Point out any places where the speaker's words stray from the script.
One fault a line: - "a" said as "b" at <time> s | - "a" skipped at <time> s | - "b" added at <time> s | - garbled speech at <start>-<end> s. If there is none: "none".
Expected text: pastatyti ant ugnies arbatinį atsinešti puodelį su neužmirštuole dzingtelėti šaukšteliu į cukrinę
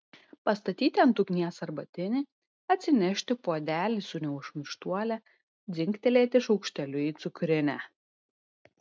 none